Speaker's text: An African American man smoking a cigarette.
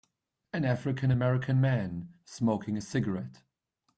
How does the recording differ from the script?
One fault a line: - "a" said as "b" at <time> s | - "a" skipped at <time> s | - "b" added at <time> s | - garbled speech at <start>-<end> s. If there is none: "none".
none